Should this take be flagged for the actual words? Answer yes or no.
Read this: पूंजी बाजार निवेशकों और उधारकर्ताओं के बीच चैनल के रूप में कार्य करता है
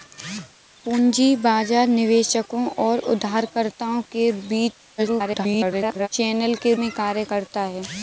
yes